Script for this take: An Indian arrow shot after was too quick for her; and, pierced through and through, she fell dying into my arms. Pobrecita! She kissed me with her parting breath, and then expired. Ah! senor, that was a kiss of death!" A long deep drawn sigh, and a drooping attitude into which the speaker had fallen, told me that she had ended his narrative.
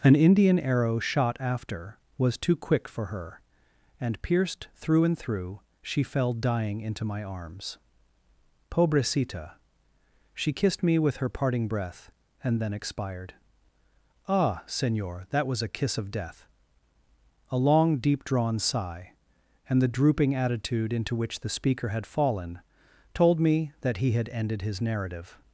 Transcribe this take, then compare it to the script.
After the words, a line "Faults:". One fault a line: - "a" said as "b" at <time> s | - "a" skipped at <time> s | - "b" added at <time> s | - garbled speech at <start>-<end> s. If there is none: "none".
An Indian arrow shot after was too quick for her; and, pierced through and through, she fell dying into my arms. Pobrecita! She kissed me with her parting breath, and then expired. Ah! senor, that was a kiss of death!" A long deep drawn sigh, and the drooping attitude into which the speaker had fallen, told me that he had ended his narrative.
Faults:
- "a" said as "the" at 19.8 s
- "she" said as "he" at 24.0 s